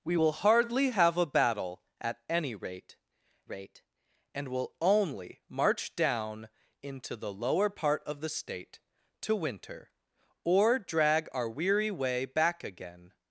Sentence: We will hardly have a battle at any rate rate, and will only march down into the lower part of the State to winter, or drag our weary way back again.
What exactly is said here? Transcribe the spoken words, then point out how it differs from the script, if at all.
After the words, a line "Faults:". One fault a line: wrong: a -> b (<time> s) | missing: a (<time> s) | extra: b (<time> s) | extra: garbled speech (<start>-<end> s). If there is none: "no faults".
We will hardly have a battle at any rate rate, and will only march down into the lower part of the State to winter, or drag our weary way back again.
Faults:
no faults